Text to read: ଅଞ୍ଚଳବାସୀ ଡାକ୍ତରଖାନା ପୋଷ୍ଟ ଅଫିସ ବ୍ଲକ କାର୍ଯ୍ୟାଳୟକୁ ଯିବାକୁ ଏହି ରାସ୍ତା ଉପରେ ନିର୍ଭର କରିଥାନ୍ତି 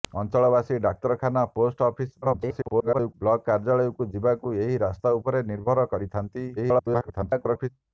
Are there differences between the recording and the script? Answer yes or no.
yes